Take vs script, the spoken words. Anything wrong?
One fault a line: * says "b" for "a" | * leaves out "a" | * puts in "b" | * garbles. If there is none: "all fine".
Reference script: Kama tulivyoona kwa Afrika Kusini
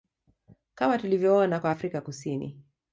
all fine